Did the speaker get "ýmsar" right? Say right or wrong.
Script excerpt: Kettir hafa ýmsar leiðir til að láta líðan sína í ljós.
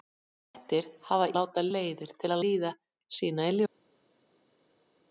wrong